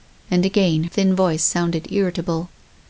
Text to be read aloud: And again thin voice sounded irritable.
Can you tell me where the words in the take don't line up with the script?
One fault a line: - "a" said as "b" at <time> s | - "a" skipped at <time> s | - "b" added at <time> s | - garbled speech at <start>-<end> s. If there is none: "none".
none